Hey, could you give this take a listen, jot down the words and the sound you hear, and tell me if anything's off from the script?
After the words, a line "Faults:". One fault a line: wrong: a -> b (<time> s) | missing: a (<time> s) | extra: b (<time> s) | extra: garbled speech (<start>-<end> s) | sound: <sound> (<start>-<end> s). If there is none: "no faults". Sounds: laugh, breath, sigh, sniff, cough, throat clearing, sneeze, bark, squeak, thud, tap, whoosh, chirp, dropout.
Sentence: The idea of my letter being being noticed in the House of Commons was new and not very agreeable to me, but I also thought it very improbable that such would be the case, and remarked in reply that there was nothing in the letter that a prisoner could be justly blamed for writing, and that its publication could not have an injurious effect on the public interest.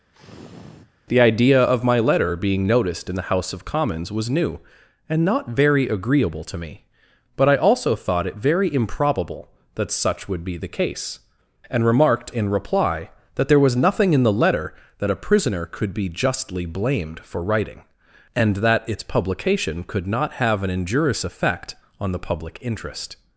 The idea of my letter being noticed in the House of Commons was new and not very agreeable to me, but I also thought it very improbable that such would be the case, and remarked in reply that there was nothing in the letter that a prisoner could be justly blamed for writing, and that its publication could not have an injurious effect on the public interest.
Faults:
sound: sniff (0.1-0.9 s)
missing: being (2.7 s)